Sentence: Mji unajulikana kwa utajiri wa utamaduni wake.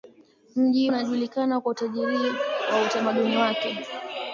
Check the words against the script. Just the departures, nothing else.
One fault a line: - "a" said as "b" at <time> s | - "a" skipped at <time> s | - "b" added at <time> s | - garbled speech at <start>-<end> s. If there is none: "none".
none